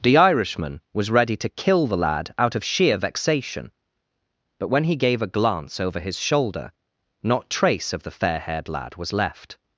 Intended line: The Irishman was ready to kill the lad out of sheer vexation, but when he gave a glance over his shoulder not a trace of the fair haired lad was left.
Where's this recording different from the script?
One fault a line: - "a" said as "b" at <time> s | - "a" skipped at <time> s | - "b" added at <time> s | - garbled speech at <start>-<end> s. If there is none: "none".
- "a" skipped at 7.5 s